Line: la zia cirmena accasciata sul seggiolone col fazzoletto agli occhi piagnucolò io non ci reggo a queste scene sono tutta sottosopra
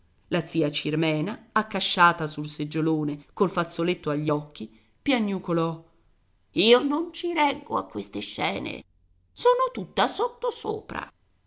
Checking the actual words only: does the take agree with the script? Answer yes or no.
yes